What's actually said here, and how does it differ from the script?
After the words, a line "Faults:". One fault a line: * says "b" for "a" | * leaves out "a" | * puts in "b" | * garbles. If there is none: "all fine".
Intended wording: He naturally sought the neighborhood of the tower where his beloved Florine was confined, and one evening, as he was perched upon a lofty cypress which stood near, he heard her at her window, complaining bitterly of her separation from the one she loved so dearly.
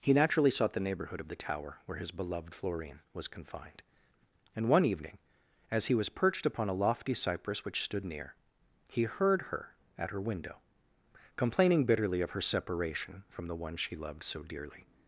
He naturally sought the neighborhood of the tower where his beloved Florine was confined, and one evening, as he was perched upon a lofty cypress which stood near, he heard her at her window, complaining bitterly of her separation from the one she loved so dearly.
Faults:
all fine